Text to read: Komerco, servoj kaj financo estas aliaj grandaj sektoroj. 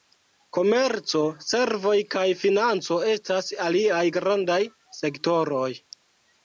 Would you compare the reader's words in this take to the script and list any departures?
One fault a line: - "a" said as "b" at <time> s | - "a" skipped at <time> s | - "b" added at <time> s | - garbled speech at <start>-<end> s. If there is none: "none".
none